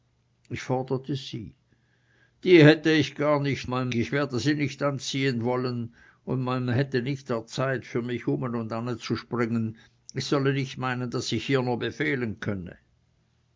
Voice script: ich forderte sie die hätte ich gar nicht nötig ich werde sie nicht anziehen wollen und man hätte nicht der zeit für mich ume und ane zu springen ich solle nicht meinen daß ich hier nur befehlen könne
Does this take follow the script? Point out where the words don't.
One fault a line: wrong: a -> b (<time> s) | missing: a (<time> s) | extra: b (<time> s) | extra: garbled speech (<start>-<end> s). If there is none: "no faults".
wrong: nötig -> man (3.6 s)